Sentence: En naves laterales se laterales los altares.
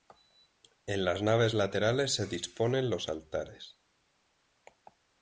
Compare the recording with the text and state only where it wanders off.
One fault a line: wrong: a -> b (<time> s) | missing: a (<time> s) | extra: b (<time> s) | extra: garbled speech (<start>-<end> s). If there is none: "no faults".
extra: las (1.1 s)
wrong: laterales -> disponen (2.3 s)